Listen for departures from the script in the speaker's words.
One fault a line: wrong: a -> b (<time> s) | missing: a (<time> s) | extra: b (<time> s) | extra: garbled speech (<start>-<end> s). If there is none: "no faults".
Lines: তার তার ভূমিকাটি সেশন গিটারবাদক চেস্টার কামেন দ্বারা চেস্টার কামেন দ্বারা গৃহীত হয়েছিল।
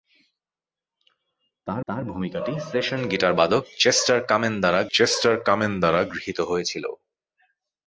no faults